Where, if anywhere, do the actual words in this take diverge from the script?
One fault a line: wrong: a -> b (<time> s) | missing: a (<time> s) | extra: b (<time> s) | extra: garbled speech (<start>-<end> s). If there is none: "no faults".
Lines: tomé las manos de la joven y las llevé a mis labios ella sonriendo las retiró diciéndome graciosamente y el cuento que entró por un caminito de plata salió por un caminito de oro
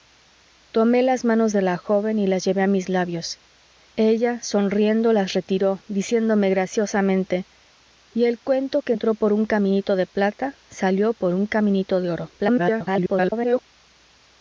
extra: garbled speech (12.4-13.6 s)